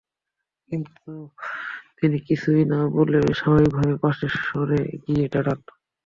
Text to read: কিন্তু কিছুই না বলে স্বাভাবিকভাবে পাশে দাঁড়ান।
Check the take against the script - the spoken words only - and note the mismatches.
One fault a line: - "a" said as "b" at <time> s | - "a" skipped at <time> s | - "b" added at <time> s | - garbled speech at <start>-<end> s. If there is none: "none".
- "তিনি" added at 2.0 s
- "সরে গিয়ে" added at 4.4 s